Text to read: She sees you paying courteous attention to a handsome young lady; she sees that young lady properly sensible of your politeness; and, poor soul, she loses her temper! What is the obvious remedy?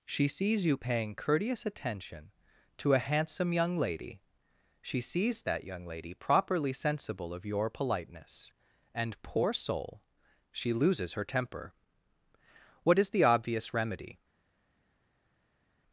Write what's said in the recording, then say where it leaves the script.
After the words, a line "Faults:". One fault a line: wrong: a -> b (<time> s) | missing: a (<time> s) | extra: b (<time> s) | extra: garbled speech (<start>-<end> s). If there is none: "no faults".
She sees you paying courteous attention to a handsome young lady; she sees that young lady properly sensible of your politeness; and, poor soul, she loses her temper! What is the obvious remedy?
Faults:
no faults